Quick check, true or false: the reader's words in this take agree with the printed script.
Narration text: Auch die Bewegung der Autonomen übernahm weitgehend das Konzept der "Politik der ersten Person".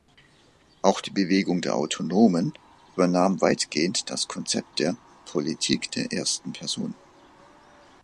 true